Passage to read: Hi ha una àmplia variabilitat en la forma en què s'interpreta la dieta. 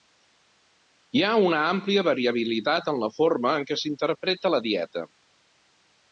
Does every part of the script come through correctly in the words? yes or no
yes